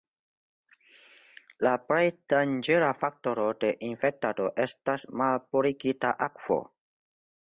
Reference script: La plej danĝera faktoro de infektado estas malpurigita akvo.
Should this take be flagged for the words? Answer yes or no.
no